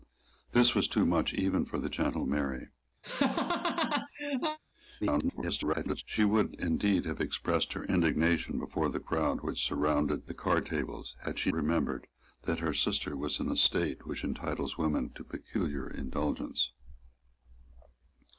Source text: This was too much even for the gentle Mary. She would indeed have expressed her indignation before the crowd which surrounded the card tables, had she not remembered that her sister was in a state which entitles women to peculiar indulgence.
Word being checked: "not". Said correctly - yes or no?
no